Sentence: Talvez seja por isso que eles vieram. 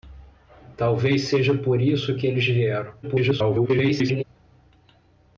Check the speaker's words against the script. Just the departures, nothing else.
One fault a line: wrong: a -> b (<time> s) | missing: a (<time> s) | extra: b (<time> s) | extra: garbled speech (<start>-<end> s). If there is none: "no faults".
extra: garbled speech (3.0-4.2 s)